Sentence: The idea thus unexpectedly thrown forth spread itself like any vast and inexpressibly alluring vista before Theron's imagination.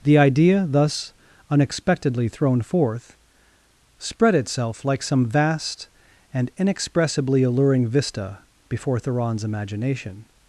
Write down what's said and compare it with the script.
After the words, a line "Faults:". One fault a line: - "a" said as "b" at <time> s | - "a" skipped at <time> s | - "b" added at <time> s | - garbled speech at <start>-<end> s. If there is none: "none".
The idea thus unexpectedly thrown forth spread itself like some vast and inexpressibly alluring vista before Theron's imagination.
Faults:
- "any" said as "some" at 5.0 s